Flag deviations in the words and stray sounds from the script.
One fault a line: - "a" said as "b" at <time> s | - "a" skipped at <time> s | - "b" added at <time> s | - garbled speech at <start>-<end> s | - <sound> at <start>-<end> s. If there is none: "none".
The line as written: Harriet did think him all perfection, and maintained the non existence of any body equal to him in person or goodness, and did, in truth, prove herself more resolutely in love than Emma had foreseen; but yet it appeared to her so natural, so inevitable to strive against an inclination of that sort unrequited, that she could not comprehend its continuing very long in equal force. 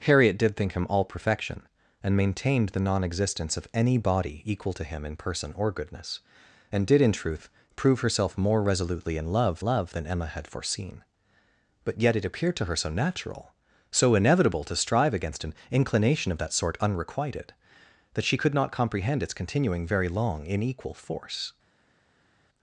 - "love" added at 9.6 s